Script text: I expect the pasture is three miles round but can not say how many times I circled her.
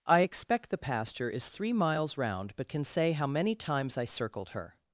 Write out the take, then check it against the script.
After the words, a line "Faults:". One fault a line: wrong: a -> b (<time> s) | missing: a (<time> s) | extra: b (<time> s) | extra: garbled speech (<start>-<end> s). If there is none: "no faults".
I expect the pasture is three miles round but can say how many times I circled her.
Faults:
missing: not (2.8 s)